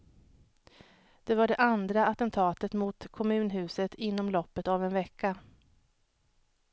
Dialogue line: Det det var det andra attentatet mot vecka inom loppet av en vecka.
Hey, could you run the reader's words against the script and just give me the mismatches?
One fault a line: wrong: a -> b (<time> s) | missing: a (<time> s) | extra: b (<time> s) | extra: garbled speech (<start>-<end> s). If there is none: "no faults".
missing: det (1.4 s)
wrong: vecka -> kommunhuset (3.1 s)